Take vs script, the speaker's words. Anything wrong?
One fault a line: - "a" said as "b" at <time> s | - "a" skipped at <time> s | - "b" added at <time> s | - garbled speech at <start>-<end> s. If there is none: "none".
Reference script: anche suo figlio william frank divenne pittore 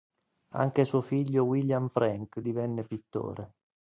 none